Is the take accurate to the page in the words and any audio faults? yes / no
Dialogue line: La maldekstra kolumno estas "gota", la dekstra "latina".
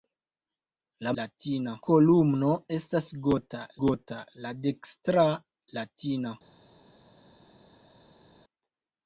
no